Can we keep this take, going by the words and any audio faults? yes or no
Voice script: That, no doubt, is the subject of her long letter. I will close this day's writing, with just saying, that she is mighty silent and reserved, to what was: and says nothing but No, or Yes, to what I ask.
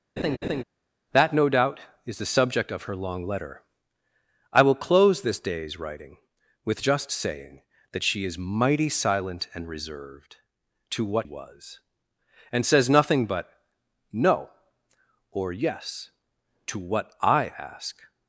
no